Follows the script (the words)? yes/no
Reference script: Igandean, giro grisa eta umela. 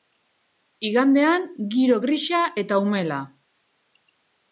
yes